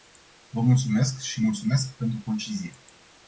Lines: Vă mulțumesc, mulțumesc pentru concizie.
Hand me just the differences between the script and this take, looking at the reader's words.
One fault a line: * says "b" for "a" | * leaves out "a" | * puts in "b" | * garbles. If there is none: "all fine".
* puts in "și"